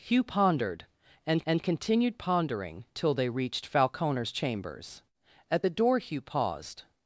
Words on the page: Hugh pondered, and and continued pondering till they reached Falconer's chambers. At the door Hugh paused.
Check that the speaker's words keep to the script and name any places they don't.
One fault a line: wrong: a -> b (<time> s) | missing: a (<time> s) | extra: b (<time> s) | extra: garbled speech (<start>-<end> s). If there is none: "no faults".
no faults